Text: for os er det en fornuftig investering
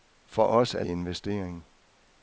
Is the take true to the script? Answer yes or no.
no